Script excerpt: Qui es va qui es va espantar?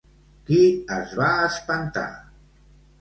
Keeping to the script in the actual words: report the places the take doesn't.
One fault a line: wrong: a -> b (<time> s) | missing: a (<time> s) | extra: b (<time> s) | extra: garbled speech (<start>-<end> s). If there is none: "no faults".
missing: qui es va (1.3 s)